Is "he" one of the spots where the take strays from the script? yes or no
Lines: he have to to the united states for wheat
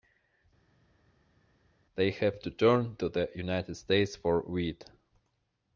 yes